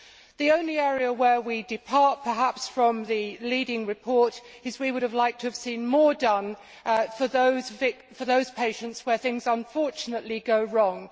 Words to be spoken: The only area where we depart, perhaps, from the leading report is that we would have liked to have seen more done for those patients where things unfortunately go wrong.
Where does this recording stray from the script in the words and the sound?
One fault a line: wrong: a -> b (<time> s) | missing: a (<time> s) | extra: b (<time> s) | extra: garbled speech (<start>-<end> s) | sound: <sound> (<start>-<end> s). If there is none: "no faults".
no faults